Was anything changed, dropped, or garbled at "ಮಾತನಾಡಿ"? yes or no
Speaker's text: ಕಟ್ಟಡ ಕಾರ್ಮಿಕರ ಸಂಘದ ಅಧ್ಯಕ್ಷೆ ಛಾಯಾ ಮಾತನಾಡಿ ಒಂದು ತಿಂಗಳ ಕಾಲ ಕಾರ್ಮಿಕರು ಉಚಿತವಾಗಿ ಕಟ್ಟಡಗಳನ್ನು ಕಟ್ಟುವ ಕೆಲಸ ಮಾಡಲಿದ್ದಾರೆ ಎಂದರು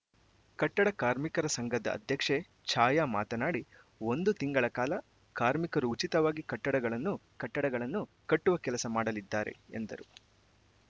no